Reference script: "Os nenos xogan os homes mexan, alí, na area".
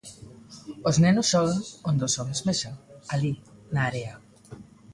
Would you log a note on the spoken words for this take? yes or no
yes